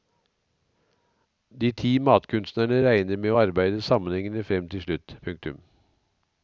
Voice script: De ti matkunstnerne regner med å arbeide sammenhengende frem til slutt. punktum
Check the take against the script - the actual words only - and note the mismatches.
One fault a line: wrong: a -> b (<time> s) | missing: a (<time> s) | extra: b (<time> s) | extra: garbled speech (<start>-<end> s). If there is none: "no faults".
no faults